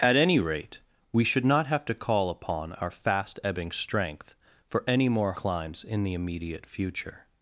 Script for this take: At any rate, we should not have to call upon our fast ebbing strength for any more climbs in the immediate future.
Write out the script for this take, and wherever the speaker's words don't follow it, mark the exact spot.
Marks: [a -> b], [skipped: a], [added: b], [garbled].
At any rate, we should not have to call upon our fast ebbing strength for any more climbs in the immediate future.